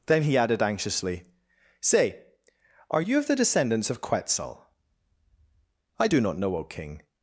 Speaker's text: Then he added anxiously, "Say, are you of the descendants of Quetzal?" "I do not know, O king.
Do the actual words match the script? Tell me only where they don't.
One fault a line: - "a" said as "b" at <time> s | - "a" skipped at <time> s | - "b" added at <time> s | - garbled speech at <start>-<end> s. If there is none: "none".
none